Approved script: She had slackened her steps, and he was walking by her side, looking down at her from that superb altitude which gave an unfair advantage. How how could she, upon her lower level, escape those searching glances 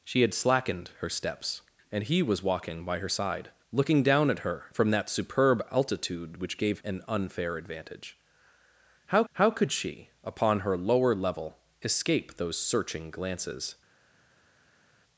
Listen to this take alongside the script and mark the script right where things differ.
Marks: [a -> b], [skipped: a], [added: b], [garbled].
She had slackened her steps, and he was walking by her side, looking down at her from that superb altitude which gave an unfair advantage. How how could she, upon her lower level, escape those searching glances